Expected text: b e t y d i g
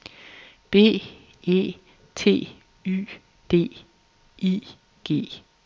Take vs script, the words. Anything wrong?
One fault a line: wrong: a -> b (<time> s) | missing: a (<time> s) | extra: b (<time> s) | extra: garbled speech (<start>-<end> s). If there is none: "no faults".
no faults